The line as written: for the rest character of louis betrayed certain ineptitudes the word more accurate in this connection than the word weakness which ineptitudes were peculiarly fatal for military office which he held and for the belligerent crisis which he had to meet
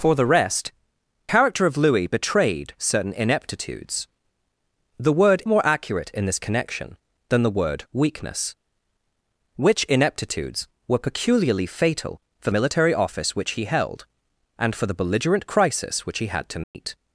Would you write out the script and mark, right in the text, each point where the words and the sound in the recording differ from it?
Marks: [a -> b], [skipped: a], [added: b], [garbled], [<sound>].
for the rest character of louis betrayed certain ineptitudes the word more accurate in this connection than the word weakness which ineptitudes were peculiarly fatal for military office which he held and for the belligerent crisis which he had to meet [dropout]